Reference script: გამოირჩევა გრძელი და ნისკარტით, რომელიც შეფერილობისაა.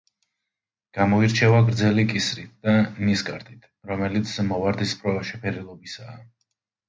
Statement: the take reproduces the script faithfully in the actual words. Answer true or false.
false